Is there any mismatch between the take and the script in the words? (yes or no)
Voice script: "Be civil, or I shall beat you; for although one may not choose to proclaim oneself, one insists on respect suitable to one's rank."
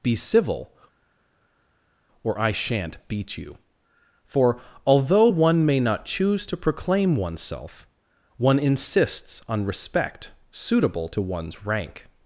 yes